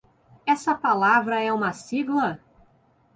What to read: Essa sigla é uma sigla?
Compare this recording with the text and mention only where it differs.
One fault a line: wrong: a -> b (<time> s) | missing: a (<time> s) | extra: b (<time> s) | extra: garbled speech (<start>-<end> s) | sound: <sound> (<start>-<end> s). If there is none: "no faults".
wrong: sigla -> palavra (0.7 s)